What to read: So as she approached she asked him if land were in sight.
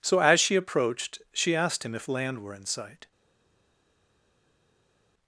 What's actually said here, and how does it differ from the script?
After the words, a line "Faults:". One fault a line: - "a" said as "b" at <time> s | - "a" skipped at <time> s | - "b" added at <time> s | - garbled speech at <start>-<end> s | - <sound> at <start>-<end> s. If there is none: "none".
So as she approached she asked him if land were in sight.
Faults:
none